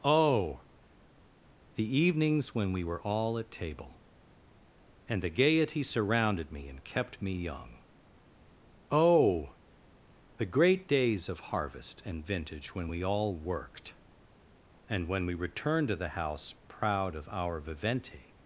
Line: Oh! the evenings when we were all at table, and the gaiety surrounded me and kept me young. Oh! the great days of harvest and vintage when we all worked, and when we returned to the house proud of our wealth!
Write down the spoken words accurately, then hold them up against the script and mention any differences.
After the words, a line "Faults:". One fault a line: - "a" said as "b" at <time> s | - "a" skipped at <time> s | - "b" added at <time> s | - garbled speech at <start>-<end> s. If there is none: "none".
Oh! the evenings when we were all at table, and the gaiety surrounded me and kept me young. Oh! the great days of harvest and vintage when we all worked, and when we returned to the house proud of our vivente!
Faults:
- "wealth" said as "vivente" at 17.6 s